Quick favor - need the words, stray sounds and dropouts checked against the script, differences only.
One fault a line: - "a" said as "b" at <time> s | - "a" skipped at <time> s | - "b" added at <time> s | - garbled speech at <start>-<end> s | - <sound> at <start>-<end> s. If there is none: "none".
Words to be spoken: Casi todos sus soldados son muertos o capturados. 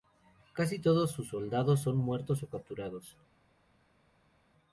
none